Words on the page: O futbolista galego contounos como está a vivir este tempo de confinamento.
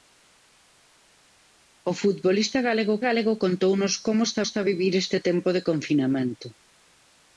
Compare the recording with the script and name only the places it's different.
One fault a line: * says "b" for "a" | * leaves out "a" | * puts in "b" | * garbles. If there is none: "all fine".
* puts in "galego"
* puts in "está"